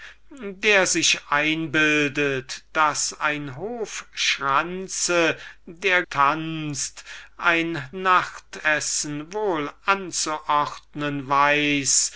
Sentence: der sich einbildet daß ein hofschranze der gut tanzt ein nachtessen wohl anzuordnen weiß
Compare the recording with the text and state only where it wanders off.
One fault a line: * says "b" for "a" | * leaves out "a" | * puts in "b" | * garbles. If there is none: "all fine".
* leaves out "gut"